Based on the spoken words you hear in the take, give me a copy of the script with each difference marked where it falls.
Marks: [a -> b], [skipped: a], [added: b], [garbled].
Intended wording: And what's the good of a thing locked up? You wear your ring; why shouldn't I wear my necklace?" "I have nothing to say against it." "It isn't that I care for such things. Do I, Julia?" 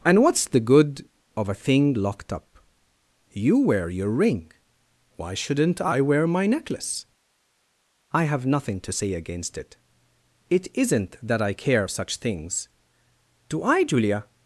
And what's the good of a thing locked up? You wear your ring; why shouldn't I wear my necklace?" "I have nothing to say against it." "It isn't that I care [skipped: for] such things. Do I, Julia?"